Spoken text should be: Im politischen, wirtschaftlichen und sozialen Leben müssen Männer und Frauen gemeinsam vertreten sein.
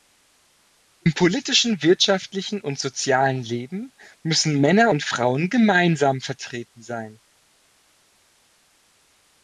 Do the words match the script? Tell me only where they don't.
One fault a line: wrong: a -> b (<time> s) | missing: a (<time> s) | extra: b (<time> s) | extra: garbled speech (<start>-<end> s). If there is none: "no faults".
no faults